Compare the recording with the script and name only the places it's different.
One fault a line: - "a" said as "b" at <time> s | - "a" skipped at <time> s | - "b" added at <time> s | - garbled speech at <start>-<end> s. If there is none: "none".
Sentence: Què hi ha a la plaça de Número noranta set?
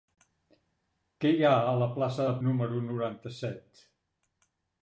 none